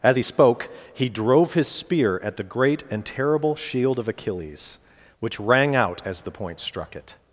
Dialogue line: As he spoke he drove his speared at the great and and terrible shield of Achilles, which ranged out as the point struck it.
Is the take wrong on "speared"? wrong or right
wrong